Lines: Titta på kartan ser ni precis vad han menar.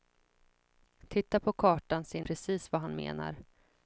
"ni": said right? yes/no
no